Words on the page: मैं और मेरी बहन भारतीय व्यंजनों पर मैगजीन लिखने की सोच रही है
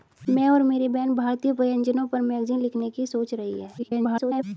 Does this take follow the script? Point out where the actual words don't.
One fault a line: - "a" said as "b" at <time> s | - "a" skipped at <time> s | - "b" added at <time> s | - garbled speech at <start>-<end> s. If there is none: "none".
- garbled speech at 3.8-4.4 s